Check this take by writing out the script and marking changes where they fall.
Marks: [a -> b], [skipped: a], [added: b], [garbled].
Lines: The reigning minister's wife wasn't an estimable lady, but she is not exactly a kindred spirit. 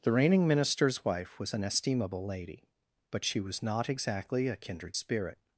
The reigning minister's wife [wasn't -> was] an estimable lady, but she [is -> was] not exactly a kindred spirit.